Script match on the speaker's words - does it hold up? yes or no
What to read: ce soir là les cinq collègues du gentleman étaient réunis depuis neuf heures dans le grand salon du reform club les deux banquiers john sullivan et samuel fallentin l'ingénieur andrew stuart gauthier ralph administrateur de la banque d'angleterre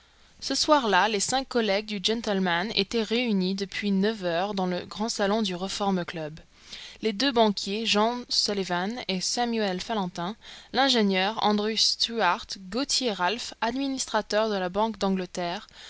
yes